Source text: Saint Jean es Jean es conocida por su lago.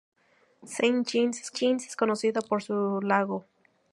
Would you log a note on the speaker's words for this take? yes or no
no